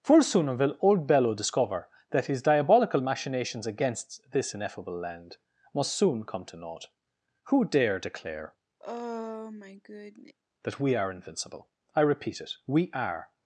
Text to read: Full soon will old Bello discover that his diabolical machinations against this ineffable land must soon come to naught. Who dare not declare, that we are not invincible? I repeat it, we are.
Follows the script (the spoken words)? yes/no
no